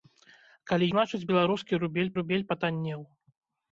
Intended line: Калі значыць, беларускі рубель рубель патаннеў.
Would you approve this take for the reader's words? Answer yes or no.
yes